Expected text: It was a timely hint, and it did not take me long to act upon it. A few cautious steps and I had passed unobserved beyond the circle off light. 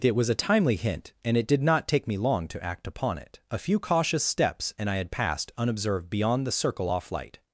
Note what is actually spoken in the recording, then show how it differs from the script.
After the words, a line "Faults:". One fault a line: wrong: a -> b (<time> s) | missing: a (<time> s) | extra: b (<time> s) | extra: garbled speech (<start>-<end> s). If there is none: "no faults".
It was a timely hint, and it did not take me long to act upon it. A few cautious steps and I had passed unobserved beyond the circle off light.
Faults:
no faults